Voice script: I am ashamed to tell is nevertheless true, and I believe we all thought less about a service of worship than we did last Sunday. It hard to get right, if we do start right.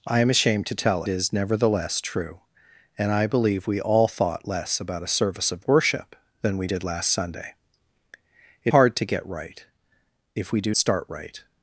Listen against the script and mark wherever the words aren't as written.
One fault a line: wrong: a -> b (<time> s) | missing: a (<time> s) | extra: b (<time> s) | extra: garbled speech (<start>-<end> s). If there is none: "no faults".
no faults